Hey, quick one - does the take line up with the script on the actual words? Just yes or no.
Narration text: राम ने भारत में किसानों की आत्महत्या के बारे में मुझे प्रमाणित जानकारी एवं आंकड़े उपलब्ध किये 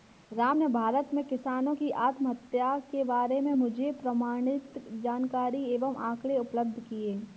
yes